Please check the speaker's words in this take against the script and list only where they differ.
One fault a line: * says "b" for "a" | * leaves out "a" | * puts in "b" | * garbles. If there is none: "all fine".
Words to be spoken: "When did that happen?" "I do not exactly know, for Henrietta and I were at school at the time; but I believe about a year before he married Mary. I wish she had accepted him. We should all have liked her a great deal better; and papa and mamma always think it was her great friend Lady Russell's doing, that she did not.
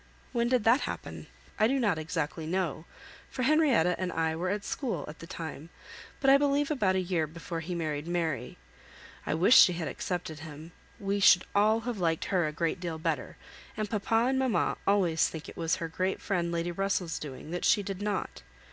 all fine